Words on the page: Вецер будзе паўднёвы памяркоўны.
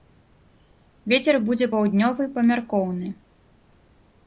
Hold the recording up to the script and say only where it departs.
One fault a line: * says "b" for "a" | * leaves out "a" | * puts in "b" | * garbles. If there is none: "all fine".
all fine